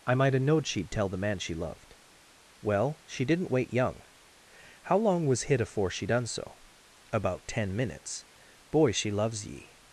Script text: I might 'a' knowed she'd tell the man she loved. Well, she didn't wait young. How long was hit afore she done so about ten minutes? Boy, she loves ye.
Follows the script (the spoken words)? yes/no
yes